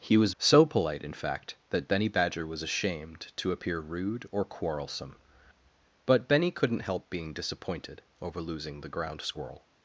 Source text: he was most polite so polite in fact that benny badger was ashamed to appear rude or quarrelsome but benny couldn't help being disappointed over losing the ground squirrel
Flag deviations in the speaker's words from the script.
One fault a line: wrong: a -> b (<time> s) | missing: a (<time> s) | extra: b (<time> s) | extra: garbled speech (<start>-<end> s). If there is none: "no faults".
missing: most polite (0.3 s)